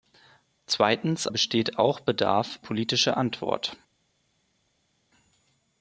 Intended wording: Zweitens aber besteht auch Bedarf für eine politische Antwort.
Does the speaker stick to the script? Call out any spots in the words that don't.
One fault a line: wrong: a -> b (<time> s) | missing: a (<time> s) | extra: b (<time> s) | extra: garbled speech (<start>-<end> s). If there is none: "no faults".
missing: aber (1.3 s)
missing: für eine (2.6 s)